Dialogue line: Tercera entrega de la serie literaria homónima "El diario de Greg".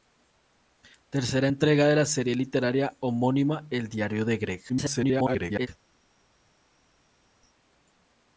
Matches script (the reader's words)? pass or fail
fail